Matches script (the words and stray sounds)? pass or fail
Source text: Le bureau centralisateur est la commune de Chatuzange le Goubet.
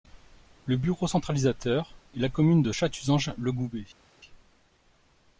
pass